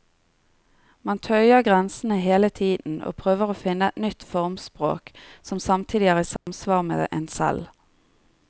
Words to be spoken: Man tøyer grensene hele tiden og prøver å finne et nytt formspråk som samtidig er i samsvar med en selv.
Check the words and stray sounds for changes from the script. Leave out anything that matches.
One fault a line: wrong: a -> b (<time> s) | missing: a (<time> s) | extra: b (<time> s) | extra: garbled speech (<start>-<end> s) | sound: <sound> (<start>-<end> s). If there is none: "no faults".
sound: dropout (6.4-6.5 s)